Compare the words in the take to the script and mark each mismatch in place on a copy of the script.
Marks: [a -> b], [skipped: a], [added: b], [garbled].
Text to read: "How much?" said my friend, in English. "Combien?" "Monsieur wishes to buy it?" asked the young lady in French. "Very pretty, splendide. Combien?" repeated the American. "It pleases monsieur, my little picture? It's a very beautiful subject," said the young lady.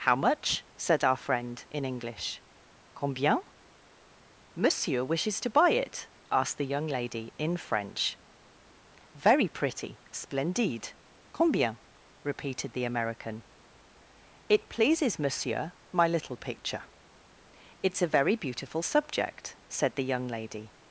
"How much?" said [my -> our] friend, in English. "Combien?" "Monsieur wishes to buy it?" asked the young lady in French. "Very pretty, splendide. Combien?" repeated the American. "It pleases monsieur, my little picture? It's a very beautiful subject," said the young lady.